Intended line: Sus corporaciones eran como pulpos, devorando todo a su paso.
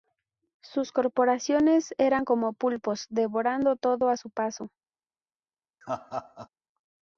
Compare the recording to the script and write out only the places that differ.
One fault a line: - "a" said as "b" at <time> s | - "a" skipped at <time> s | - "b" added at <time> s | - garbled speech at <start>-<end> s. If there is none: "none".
none